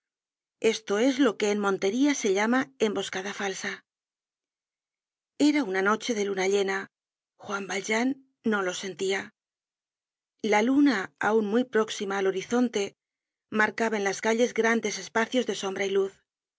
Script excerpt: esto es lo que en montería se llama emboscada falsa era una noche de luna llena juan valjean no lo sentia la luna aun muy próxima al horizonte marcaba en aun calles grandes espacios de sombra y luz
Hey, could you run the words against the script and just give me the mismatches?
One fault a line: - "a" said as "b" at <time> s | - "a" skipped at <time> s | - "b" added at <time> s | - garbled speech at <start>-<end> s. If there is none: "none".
- "aun" said as "las" at 14.0 s